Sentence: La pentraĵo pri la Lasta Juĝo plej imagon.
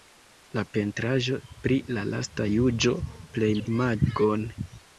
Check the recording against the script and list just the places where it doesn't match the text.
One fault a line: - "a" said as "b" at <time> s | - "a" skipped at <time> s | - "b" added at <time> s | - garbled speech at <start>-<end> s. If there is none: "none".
none